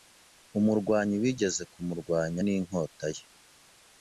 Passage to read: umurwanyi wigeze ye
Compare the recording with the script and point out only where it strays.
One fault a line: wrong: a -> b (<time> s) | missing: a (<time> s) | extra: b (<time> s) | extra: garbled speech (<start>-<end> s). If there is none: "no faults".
extra: kumurwanya ninkota (1.7 s)